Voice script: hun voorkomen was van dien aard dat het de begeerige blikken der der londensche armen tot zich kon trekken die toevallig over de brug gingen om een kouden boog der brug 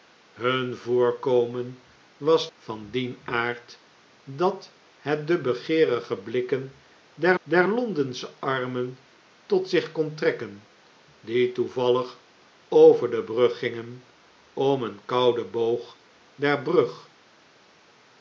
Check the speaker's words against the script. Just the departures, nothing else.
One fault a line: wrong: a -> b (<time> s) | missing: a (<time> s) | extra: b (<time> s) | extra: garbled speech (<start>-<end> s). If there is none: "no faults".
no faults